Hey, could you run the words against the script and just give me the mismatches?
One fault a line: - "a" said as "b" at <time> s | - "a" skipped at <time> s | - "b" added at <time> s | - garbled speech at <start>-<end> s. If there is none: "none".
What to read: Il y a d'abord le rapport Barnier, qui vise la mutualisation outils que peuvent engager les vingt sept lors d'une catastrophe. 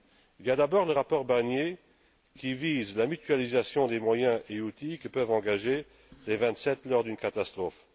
- "des moyens et" added at 3.9 s